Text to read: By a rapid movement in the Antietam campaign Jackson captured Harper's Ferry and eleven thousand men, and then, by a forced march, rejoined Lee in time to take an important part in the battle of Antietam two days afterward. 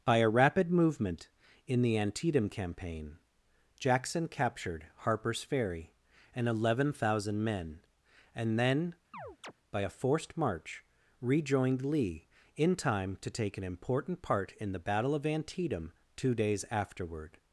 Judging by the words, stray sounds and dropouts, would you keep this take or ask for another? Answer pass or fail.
fail